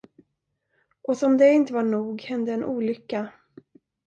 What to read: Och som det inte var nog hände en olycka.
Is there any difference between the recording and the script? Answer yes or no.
no